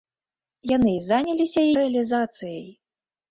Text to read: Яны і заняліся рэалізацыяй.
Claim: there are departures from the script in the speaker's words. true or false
false